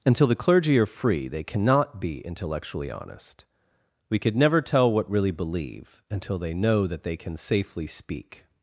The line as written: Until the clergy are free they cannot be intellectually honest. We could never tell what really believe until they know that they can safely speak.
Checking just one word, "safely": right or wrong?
right